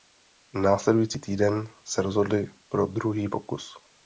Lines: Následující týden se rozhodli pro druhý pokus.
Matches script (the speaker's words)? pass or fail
pass